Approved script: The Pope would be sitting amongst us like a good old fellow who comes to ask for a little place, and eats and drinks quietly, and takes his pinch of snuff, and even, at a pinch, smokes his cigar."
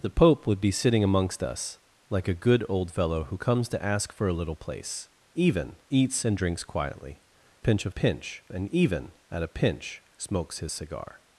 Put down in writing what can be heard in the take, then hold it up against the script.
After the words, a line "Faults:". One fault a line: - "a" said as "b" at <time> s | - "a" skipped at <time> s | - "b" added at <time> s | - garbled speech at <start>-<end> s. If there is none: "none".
The Pope would be sitting amongst us like a good old fellow who comes to ask for a little place, even eats and drinks quietly, pinch of pinch, and even, at a pinch, smokes his cigar."
Faults:
- "and" said as "even" at 5.4 s
- "and takes his" skipped at 7.2 s
- "snuff" said as "pinch" at 7.9 s